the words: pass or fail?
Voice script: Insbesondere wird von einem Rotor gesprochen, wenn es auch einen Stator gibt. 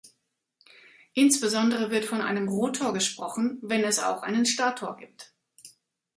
pass